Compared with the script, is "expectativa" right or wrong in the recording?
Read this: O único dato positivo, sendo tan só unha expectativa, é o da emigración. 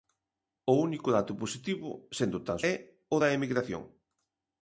wrong